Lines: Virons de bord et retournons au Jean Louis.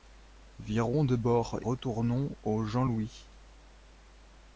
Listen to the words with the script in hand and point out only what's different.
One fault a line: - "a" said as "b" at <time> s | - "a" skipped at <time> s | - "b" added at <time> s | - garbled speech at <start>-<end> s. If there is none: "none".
- "et" skipped at 1.6 s